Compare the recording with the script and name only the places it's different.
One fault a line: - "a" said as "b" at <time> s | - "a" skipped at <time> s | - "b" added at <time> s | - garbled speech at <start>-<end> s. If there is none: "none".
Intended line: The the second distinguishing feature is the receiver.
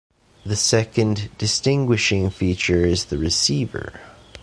- "the" skipped at 0.6 s